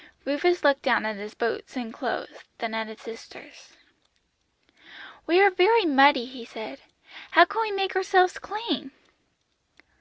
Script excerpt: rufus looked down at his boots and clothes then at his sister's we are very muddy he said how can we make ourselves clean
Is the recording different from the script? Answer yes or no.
no